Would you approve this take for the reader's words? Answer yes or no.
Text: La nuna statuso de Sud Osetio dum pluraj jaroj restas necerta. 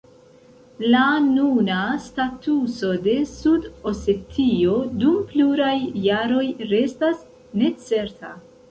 yes